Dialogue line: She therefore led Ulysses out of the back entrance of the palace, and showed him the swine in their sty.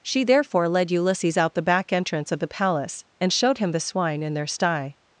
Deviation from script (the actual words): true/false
true